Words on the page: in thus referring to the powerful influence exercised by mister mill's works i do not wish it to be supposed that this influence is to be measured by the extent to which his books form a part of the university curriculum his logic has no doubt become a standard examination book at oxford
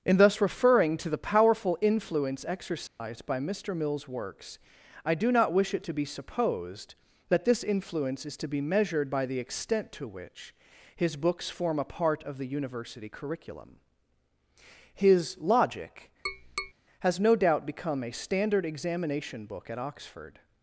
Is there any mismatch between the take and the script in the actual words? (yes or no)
no